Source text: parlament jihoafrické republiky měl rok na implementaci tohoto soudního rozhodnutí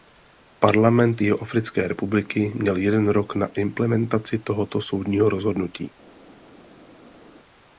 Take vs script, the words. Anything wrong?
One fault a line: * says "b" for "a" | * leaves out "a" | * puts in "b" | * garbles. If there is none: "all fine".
* puts in "jeden"